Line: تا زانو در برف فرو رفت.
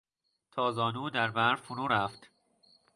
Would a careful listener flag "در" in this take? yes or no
no